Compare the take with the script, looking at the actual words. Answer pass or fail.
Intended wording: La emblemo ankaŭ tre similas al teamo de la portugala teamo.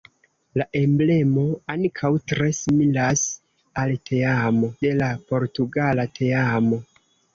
pass